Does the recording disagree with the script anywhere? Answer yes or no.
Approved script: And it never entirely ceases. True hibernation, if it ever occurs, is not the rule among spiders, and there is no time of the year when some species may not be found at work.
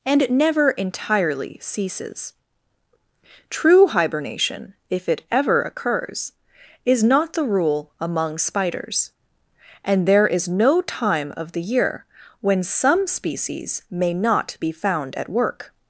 no